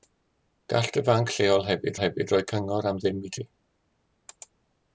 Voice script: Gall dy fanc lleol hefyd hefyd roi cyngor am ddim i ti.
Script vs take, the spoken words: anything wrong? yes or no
no